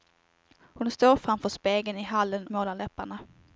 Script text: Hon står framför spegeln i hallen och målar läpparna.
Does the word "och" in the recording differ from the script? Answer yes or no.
yes